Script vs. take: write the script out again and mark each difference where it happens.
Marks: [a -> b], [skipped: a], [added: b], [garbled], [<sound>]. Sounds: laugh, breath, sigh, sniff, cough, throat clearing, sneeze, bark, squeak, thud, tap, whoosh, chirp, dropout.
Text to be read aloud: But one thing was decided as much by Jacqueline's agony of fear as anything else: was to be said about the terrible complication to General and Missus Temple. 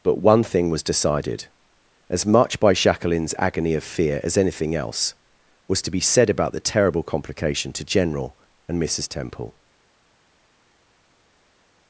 But one thing was decided as much by Jacqueline's agony of fear as anything else: was to be said about the terrible complication to General and Missus Temple.